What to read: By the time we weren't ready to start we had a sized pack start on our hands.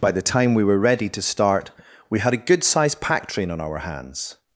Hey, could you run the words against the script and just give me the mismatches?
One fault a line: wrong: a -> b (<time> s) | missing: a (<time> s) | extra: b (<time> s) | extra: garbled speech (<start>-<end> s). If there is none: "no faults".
wrong: weren't -> were (0.6 s)
extra: good (2.4 s)
wrong: start -> train (3.3 s)